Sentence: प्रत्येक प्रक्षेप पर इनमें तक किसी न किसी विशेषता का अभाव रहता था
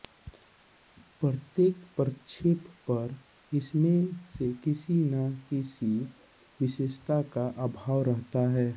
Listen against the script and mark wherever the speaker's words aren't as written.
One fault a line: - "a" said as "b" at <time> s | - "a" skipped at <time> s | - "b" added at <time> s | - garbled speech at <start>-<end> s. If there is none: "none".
- "तक" said as "से" at 4.4 s
- "था" said as "है" at 8.5 s